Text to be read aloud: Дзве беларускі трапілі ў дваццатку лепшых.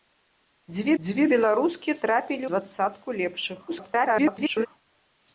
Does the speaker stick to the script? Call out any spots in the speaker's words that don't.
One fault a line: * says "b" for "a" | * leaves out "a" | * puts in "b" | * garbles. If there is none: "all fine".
* puts in "дзве"
* leaves out "ў"
* garbles